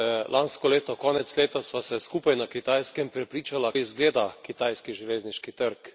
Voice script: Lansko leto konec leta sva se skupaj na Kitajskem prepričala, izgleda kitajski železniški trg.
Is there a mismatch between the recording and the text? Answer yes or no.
no